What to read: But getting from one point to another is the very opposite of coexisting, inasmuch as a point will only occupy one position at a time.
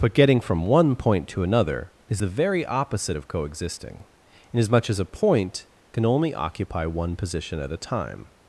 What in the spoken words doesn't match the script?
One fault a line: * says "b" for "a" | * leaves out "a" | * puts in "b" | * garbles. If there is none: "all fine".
* says "can" for "will"